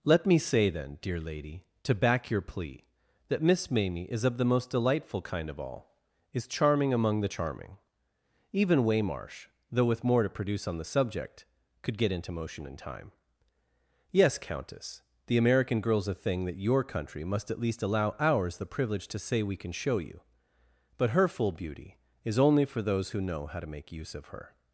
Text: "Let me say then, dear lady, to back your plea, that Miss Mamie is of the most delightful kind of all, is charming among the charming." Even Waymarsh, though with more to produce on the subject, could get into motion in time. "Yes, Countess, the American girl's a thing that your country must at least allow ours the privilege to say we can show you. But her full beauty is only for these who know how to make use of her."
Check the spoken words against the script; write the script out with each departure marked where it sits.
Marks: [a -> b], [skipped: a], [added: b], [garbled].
"Let me say then, dear lady, to back your plea, that Miss Mamie is of the most delightful kind of all, is charming among the charming." Even Waymarsh, though with more to produce on the subject, could get into motion in time. "Yes, Countess, the American girl's a thing that your country must at least allow ours the privilege to say we can show you. But her full beauty is only for [these -> those] who know how to make use of her."